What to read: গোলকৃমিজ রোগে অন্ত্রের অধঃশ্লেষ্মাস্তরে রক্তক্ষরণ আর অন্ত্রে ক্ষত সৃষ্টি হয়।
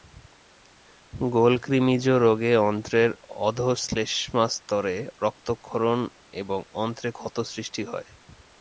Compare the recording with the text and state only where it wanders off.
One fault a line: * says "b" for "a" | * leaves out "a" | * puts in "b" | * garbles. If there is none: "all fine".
* says "এবং" for "আর"